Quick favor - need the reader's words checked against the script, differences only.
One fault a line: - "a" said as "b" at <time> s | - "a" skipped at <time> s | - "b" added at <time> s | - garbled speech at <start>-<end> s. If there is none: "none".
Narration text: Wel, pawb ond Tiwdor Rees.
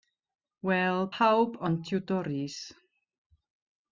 none